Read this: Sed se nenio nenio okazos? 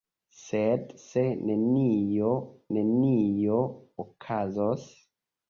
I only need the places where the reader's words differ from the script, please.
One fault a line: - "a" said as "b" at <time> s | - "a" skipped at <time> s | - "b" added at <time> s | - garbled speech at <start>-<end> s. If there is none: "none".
none